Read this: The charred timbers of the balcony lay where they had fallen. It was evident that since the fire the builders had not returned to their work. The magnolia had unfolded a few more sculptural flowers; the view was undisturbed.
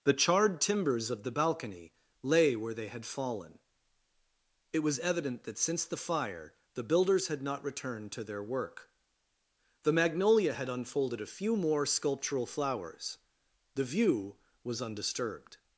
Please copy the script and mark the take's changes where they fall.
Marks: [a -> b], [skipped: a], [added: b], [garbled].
The charred timbers of the balcony lay where they had fallen. It was evident that since the fire the builders had not returned to their work. The magnolia had unfolded a few more sculptural flowers; the view was undisturbed.